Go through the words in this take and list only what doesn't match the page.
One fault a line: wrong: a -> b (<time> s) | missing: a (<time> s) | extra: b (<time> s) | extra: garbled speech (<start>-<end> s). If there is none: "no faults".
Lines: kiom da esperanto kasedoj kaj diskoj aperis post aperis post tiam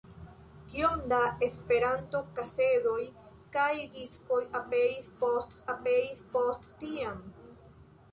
no faults